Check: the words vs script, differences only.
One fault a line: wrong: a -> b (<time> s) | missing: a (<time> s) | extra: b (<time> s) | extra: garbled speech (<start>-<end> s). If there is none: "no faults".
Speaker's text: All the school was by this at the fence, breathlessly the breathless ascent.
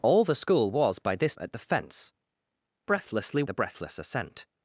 no faults